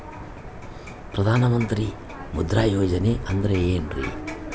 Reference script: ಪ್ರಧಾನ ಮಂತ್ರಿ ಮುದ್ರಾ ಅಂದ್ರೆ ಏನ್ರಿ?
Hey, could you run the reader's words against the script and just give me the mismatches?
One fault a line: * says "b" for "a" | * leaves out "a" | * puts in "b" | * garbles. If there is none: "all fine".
* puts in "ಯೋಜನೆ"